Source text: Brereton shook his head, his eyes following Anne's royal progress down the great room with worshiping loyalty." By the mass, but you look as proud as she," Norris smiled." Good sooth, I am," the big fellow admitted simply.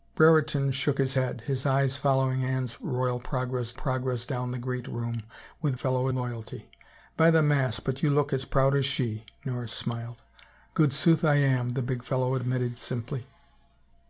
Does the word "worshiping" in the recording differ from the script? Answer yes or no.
yes